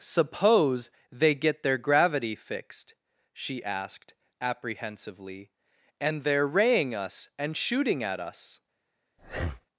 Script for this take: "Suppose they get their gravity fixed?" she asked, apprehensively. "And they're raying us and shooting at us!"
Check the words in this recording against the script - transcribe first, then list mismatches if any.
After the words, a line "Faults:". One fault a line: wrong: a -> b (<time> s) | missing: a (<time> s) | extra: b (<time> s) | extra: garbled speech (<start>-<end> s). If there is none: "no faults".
"Suppose they get their gravity fixed?" she asked, apprehensively. "And they're raying us and shooting at us!"
Faults:
no faults